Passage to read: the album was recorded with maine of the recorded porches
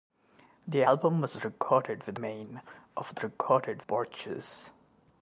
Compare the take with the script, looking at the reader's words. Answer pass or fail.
pass